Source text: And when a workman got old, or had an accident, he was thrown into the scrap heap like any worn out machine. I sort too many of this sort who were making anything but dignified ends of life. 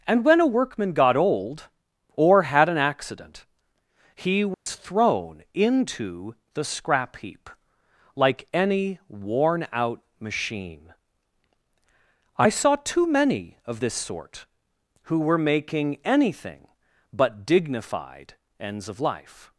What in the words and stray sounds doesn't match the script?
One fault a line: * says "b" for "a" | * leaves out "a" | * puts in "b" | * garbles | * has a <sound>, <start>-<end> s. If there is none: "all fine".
* has a dropout, 4.5-4.7 s
* says "saw" for "sort"